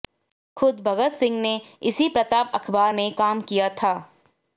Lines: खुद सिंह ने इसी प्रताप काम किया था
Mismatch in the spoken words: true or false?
true